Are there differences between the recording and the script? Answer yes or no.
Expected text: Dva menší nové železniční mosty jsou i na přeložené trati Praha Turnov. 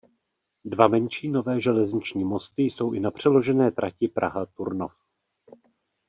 no